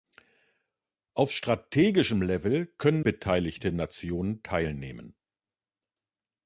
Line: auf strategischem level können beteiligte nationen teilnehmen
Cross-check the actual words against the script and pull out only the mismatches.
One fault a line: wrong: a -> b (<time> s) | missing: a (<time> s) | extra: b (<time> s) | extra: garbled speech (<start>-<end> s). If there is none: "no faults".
no faults